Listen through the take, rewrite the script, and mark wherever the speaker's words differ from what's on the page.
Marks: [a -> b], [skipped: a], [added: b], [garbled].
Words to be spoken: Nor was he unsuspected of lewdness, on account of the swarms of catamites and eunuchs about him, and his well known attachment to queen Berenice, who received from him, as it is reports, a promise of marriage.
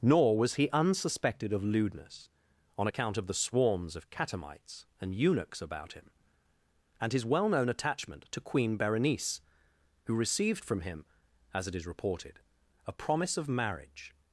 Nor was he unsuspected of lewdness, on account of the swarms of catamites and eunuchs about him, and his well known attachment to queen Berenice, who received from him, as it is [reports, -> reported] a promise of marriage.